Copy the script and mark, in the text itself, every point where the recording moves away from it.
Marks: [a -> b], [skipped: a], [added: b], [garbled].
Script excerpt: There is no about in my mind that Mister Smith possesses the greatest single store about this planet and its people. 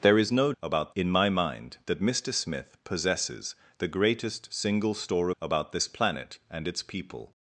There is no about in my mind that Mister Smith possesses the greatest single store about this planet and its people.